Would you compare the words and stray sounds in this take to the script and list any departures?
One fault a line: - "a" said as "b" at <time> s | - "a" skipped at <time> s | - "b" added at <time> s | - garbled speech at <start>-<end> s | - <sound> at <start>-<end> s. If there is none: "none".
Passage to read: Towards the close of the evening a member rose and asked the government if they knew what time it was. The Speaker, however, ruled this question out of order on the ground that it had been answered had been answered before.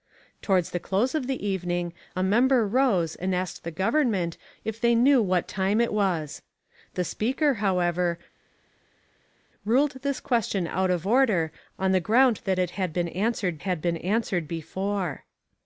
none